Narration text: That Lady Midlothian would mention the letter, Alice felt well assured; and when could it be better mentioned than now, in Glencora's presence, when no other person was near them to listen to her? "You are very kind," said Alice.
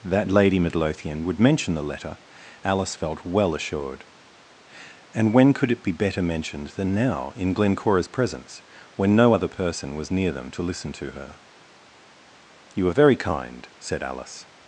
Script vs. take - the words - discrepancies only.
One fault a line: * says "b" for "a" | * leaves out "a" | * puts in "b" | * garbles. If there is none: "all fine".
all fine